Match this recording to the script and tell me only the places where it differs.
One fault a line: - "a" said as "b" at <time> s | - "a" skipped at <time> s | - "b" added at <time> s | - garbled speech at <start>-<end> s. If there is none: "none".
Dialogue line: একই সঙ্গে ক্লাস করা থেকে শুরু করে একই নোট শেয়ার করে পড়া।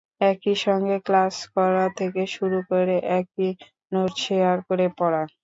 none